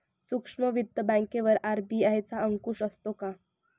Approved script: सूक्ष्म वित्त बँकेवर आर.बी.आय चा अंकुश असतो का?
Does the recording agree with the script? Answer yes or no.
yes